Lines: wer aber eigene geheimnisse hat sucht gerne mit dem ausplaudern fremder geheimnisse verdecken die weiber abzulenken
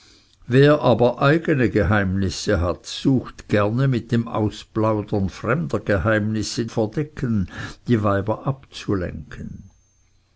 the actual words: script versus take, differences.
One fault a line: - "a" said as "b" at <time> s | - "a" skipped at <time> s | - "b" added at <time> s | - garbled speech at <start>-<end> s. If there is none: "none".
none